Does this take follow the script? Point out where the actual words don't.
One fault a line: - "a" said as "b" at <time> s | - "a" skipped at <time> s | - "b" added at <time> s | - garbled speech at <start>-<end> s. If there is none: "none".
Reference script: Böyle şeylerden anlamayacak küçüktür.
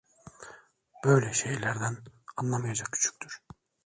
none